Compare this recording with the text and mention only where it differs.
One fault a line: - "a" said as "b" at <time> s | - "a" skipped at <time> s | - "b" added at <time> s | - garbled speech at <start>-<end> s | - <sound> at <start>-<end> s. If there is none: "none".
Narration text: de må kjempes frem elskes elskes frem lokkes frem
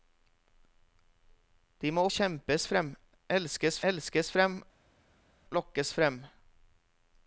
none